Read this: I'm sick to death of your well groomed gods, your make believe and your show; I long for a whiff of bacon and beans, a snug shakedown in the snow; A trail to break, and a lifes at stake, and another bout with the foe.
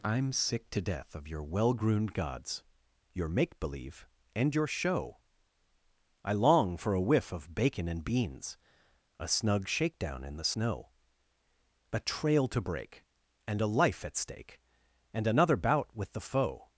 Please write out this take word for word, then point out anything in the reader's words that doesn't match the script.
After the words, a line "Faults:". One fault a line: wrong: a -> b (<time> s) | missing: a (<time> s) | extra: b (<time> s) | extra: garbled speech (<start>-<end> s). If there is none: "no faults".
I'm sick to death of your well groomed gods, your make believe and your show; I long for a whiff of bacon and beans, a snug shakedown in the snow; A trail to break, and a life at stake, and another bout with the foe.
Faults:
wrong: lifes -> life (13.7 s)